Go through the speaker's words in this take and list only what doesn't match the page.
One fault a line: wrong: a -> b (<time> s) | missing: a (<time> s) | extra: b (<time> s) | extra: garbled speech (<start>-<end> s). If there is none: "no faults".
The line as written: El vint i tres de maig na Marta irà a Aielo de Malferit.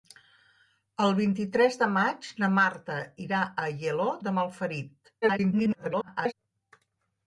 extra: garbled speech (5.2-6.3 s)